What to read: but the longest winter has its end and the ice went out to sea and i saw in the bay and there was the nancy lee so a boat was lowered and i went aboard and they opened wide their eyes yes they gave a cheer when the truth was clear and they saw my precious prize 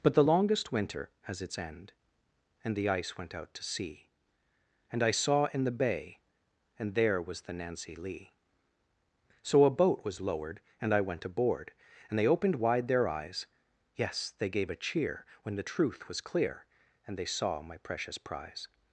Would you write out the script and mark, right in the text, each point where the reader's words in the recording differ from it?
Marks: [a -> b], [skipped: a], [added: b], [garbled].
but the longest winter has its end and the ice went out to sea and i saw in the bay and there was the nancy lee so a boat was lowered and i went aboard and they opened wide their eyes yes they gave a cheer when the truth was clear and they saw my precious prize